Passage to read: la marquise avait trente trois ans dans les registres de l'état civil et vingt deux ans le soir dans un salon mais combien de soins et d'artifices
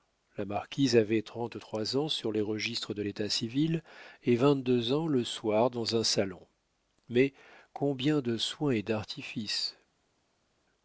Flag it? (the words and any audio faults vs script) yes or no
yes